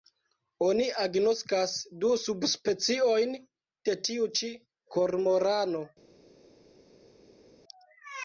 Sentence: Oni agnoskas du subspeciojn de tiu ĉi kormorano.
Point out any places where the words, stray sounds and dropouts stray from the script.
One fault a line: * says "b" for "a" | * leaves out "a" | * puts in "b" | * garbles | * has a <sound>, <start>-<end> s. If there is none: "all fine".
all fine